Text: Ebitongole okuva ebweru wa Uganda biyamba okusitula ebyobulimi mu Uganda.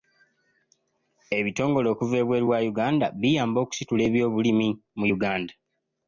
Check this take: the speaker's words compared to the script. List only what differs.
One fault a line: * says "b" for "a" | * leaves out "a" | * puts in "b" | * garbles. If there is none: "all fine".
all fine